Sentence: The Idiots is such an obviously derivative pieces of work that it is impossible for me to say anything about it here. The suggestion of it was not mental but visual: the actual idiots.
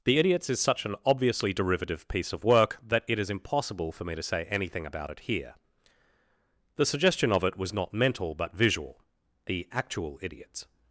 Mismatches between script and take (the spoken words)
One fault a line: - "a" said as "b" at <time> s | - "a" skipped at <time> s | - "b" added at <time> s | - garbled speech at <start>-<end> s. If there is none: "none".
- "pieces" said as "piece" at 2.1 s